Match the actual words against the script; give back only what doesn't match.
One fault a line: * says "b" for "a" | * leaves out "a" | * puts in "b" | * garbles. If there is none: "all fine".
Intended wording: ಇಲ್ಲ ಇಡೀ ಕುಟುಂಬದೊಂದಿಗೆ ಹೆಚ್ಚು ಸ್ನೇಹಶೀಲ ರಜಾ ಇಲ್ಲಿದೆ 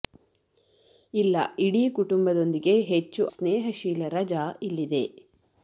all fine